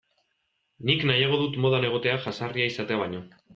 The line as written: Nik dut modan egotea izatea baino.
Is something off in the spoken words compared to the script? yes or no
yes